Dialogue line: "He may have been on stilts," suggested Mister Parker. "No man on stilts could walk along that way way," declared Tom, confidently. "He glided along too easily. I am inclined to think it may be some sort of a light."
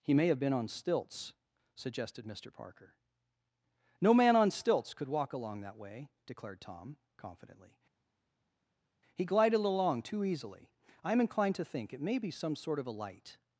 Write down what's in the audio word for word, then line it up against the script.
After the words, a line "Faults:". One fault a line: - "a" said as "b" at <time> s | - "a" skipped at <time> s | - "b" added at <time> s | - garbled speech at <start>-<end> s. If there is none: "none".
"He may have been on stilts," suggested Mister Parker. "No man on stilts could walk along that way," declared Tom, confidently. "He glided along too easily. I am inclined to think it may be some sort of a light."
Faults:
- "way" skipped at 6.1 s